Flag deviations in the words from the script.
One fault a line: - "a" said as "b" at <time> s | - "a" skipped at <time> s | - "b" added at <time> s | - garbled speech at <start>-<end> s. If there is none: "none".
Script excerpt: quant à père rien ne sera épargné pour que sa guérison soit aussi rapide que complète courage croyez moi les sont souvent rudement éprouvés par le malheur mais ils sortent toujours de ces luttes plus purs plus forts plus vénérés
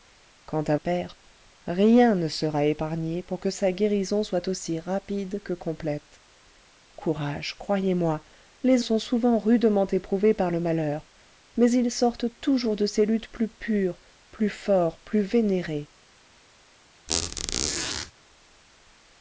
none